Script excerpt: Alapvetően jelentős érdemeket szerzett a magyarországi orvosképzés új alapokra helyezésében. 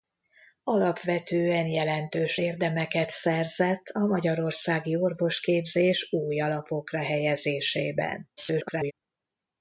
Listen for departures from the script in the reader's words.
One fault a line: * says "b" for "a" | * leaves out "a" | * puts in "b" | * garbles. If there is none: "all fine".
* garbles